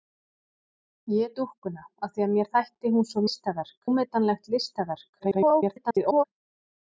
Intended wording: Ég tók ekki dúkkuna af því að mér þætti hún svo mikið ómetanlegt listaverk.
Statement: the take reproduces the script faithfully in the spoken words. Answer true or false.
false